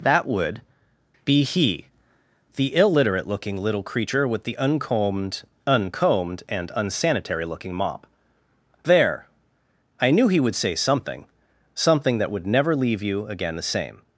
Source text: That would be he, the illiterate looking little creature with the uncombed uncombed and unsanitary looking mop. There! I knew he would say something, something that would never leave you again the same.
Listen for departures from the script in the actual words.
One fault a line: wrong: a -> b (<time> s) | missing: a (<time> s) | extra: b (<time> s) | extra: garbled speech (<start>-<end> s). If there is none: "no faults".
no faults